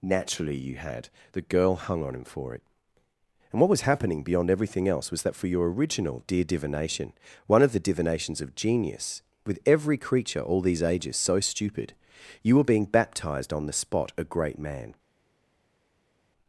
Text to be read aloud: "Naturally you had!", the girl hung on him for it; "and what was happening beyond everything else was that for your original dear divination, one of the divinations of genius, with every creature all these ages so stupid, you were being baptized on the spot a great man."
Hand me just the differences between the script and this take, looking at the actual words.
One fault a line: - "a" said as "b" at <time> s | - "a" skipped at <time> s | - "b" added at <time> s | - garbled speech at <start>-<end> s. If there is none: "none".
none